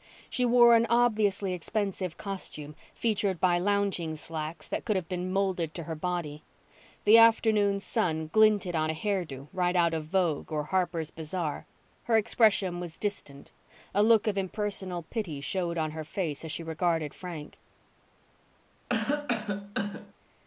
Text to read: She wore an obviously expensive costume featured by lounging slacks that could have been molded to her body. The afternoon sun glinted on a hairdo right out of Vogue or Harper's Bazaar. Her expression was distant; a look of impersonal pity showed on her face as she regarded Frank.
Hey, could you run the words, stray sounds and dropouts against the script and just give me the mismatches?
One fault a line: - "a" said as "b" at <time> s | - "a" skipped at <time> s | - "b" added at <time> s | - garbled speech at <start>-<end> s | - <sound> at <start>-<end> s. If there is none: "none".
- cough at 18.9-20.1 s